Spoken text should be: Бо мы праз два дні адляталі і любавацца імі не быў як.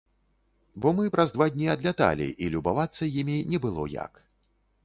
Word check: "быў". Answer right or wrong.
wrong